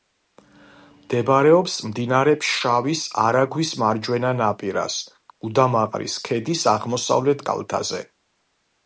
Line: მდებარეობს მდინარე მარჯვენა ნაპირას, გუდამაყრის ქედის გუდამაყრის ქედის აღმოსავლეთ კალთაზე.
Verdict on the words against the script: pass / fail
fail